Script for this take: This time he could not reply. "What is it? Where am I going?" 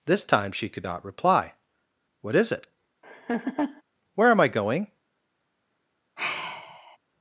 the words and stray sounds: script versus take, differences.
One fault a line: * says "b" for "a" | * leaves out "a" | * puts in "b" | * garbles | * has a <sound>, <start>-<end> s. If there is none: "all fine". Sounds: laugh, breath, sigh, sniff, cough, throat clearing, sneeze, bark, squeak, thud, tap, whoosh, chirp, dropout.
* says "she" for "he"
* has a laugh, 3.0-3.8 s
* has a sigh, 6.2-7.0 s